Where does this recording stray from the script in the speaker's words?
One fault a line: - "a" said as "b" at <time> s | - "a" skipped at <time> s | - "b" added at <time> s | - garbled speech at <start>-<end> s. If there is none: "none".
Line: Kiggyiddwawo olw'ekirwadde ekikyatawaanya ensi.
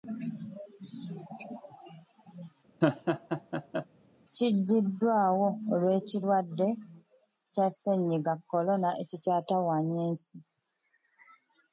- "kya Ssennyiga Corona" added at 7.5 s